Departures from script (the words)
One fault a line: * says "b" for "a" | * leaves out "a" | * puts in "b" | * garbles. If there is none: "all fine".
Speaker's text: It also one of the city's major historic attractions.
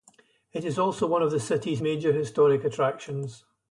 * puts in "is"